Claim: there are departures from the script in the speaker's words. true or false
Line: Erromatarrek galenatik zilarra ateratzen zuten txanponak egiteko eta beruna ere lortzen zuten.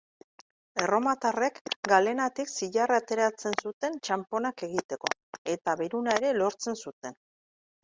false